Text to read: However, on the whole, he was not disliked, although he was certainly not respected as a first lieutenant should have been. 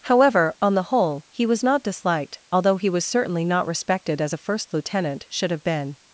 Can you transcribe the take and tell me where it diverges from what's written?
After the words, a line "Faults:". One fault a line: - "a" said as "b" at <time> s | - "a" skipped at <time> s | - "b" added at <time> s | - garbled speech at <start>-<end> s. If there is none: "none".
However, on the whole, he was not disliked, although he was certainly not respected as a first lieutenant should have been.
Faults:
none